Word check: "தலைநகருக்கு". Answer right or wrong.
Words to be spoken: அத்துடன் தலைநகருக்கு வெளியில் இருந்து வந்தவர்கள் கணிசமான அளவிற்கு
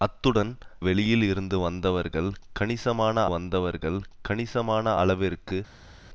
wrong